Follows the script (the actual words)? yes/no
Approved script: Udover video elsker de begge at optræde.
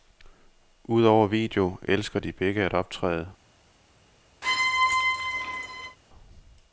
yes